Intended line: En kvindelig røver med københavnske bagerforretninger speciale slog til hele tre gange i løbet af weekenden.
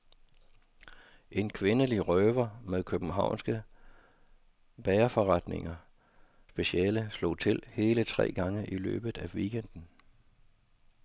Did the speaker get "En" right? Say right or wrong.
right